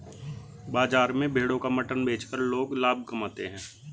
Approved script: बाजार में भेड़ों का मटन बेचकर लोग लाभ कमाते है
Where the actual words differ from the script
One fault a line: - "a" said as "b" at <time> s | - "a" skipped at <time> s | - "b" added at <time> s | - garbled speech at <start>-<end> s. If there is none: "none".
none